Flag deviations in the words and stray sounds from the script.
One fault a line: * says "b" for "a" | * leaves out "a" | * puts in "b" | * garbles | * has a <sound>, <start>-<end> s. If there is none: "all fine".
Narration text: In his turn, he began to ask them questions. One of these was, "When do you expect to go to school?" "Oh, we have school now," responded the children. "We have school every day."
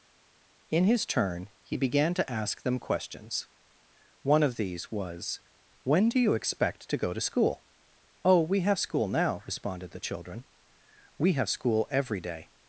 all fine